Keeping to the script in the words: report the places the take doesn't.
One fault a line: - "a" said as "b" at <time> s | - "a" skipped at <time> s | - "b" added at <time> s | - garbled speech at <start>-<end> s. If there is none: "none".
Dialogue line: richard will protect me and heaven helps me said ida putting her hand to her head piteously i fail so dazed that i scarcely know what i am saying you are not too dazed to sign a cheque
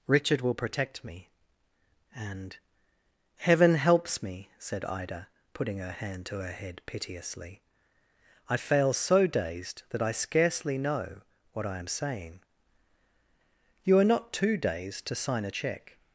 none